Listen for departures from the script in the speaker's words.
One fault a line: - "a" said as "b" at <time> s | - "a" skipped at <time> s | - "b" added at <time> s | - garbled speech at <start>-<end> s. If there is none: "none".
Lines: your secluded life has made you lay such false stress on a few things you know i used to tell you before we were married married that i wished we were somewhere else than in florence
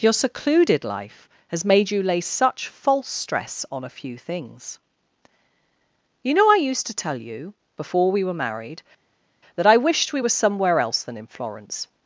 - "married" skipped at 8.8 s